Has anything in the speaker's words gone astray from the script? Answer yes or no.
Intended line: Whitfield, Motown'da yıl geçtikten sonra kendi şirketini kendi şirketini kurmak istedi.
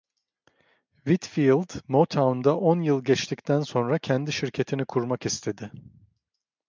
yes